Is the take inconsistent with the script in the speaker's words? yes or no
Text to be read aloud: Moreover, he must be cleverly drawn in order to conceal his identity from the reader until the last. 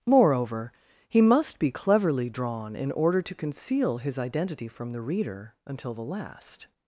no